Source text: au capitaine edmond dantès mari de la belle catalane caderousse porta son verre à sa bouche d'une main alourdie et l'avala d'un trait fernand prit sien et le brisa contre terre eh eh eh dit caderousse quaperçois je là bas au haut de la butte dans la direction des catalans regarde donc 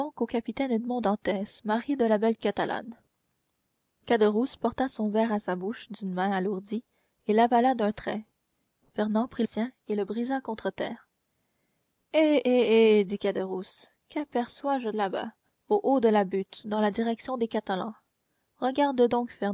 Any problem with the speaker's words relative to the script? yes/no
no